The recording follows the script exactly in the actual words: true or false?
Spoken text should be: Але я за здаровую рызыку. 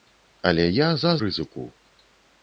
false